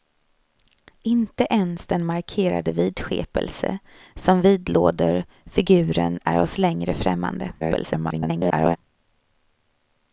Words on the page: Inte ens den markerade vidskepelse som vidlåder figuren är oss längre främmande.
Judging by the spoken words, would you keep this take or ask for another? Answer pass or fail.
fail